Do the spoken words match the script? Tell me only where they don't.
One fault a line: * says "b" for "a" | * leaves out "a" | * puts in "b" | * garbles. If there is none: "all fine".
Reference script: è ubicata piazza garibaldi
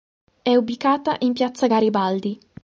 * puts in "in"